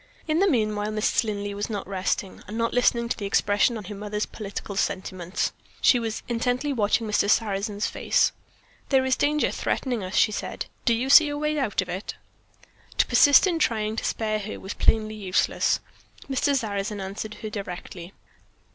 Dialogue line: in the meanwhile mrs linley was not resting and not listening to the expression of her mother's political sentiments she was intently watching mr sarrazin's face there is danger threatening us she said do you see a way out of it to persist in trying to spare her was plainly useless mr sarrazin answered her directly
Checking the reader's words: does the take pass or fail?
pass